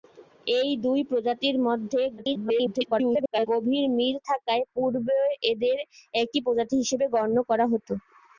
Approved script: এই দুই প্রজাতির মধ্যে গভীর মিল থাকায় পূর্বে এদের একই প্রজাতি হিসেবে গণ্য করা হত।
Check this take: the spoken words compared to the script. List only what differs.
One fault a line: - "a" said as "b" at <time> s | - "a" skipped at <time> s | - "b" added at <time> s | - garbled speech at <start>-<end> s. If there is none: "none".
- garbled speech at 2.2-3.5 s